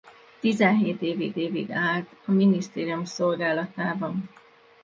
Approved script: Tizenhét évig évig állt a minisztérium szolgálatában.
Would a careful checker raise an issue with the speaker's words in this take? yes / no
no